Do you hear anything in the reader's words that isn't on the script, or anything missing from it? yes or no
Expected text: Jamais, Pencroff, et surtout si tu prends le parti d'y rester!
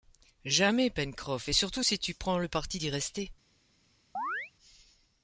no